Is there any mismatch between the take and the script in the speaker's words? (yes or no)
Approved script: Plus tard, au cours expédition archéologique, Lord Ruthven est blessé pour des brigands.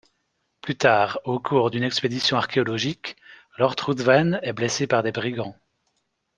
yes